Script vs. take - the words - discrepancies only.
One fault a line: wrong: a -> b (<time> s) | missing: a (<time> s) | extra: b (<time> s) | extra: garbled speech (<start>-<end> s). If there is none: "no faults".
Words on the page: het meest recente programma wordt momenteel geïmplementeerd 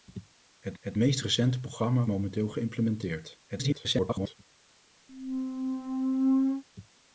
extra: het (0.8 s)
missing: wordt (2.1 s)
extra: garbled speech (3.5-4.3 s)